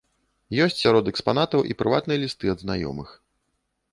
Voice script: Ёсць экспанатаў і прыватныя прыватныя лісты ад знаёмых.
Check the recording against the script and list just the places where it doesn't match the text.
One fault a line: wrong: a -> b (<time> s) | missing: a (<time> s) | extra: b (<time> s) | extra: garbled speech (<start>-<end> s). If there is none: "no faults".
extra: сярод (0.8 s)
missing: прыватныя (2.2 s)